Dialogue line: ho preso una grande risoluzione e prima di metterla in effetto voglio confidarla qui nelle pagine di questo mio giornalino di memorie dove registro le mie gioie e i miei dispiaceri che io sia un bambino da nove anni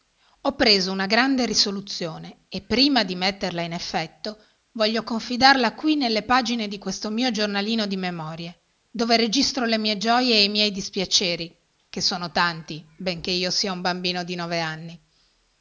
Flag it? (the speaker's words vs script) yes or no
yes